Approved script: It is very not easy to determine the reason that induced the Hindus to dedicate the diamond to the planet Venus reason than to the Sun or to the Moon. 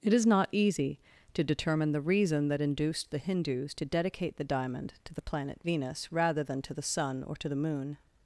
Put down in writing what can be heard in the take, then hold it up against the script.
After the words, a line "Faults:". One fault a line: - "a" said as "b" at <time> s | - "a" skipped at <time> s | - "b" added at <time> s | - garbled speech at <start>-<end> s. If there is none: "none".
It is not easy to determine the reason that induced the Hindus to dedicate the diamond to the planet Venus rather than to the Sun or to the Moon.
Faults:
- "very" skipped at 0.2 s
- "reason" said as "rather" at 6.1 s